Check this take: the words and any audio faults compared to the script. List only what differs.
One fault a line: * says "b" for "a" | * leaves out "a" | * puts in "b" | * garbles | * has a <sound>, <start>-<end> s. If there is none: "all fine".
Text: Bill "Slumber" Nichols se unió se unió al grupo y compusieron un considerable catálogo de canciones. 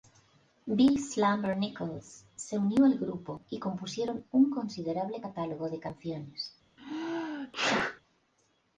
* leaves out "se unió"
* has a sneeze, 6.8-8.0 s